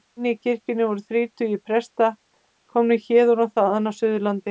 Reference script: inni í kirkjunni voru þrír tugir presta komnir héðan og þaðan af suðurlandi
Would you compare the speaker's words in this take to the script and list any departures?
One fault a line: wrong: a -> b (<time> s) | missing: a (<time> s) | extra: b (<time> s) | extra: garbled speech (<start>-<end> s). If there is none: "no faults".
no faults